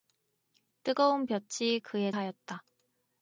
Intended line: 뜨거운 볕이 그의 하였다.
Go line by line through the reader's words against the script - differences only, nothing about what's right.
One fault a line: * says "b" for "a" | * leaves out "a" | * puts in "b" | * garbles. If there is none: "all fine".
all fine